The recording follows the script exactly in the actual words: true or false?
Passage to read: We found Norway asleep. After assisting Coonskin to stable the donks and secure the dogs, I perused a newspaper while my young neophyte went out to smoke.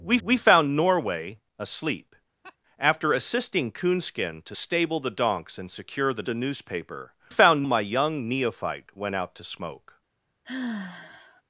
false